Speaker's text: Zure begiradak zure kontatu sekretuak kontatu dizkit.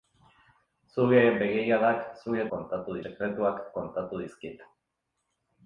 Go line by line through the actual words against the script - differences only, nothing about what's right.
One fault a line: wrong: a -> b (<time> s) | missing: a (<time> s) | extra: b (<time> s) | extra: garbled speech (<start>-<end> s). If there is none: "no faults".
no faults